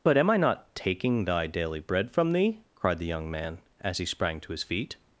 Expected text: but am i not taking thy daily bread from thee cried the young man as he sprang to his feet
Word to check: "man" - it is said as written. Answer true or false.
true